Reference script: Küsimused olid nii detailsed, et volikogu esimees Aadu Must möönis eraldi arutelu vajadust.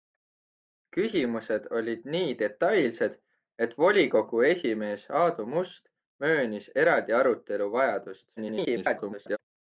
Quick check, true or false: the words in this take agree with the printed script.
false